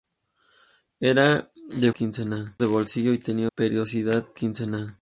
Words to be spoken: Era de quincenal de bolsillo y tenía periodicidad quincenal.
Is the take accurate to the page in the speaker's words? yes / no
yes